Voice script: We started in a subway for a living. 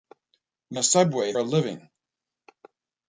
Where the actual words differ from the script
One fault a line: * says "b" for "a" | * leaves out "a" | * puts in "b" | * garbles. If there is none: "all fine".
* leaves out "started in"
* leaves out "for"